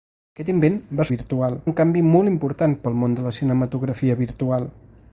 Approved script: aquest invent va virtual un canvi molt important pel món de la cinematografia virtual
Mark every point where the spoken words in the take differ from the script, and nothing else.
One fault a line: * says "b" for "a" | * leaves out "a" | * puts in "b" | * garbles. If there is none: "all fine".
all fine